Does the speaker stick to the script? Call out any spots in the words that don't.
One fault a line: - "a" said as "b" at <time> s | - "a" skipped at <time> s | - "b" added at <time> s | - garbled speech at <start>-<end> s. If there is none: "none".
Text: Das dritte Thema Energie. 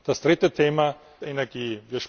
none